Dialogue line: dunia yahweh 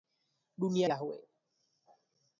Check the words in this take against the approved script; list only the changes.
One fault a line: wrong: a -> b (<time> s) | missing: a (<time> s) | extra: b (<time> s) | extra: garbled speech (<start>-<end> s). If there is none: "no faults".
no faults